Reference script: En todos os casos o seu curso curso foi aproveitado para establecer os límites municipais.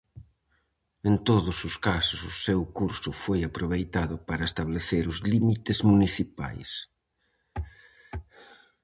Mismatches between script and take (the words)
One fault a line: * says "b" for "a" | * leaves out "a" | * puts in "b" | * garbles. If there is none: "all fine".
* leaves out "curso"